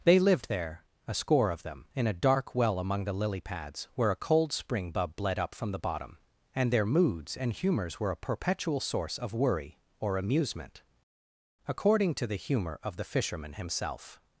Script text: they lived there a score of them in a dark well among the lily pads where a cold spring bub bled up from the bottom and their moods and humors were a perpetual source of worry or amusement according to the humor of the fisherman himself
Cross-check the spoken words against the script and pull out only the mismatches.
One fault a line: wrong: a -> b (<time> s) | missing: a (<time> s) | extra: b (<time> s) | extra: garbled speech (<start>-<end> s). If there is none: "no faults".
no faults